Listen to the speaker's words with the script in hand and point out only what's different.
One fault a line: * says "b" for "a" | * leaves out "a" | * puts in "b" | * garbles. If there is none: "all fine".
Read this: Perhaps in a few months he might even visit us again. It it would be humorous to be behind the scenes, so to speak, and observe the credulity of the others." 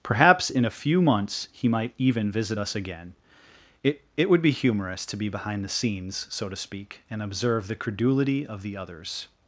all fine